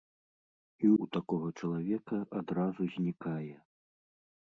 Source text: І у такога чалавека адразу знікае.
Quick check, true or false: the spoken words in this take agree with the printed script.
true